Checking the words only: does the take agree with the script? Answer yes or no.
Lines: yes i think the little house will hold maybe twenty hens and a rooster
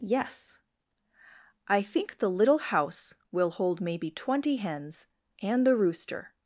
no